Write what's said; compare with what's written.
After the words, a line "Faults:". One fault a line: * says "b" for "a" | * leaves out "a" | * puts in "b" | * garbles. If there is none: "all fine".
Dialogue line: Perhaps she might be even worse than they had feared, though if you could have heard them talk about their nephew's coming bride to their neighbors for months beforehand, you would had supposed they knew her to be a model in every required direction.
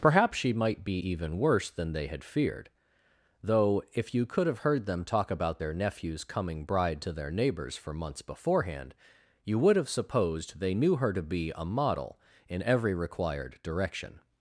Perhaps she might be even worse than they had feared, though if you could have heard them talk about their nephew's coming bride to their neighbors for months beforehand, you would have supposed they knew her to be a model in every required direction.
Faults:
* says "have" for "had"